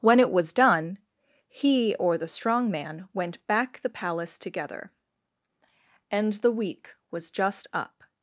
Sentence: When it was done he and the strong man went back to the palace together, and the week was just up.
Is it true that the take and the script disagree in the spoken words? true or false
true